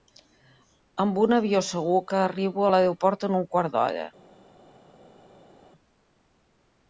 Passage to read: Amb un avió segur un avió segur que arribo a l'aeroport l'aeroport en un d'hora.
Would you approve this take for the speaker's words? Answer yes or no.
no